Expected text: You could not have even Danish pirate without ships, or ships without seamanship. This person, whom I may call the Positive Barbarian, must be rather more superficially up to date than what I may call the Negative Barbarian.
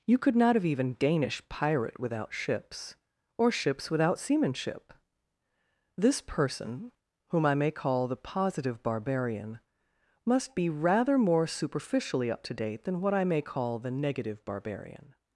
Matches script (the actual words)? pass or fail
pass